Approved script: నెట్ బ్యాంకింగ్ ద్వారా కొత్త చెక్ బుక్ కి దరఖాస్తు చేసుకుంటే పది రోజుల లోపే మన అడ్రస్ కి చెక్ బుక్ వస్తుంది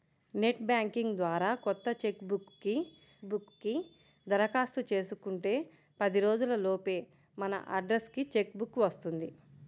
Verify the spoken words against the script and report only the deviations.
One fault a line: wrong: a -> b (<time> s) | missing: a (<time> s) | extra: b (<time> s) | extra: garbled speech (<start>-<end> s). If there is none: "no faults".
extra: బుక్ కి (3.2 s)